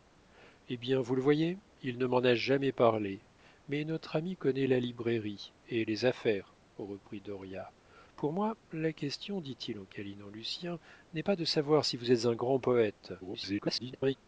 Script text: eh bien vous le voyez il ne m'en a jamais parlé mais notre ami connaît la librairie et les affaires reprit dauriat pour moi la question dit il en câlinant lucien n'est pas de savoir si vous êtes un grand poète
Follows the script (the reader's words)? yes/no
no